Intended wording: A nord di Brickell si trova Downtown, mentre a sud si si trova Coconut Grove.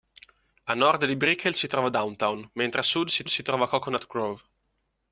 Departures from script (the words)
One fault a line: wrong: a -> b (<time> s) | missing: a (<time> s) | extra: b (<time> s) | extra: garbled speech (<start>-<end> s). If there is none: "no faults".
no faults